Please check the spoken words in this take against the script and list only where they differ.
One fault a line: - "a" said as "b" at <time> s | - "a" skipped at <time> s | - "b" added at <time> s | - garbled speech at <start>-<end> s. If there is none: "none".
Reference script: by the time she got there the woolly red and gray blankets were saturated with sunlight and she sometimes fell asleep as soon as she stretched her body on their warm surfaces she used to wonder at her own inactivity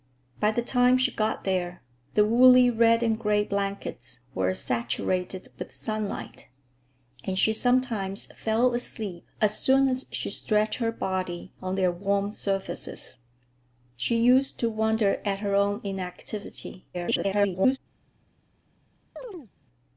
- garbled speech at 16.9-17.8 s